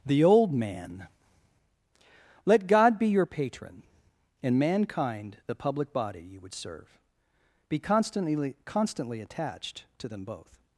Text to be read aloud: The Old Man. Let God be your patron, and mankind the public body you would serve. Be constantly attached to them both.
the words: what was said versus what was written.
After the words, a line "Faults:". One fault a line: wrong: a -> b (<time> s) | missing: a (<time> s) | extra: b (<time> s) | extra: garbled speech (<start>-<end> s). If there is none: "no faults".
The Old Man. Let God be your patron, and mankind the public body you would serve. Be constantly constantly attached to them both.
Faults:
extra: constantly (8.6 s)